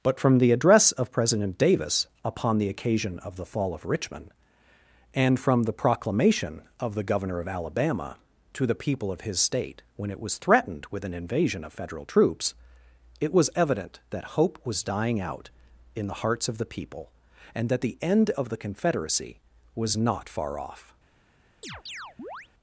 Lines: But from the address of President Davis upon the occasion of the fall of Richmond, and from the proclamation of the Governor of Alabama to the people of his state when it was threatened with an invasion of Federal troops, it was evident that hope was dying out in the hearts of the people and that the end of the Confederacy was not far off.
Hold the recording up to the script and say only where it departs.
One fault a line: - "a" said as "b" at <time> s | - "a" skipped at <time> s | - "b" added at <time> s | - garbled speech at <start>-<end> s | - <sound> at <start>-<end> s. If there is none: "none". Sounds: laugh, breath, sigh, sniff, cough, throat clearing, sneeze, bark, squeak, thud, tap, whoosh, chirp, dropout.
- chirp at 21.6-22.5 s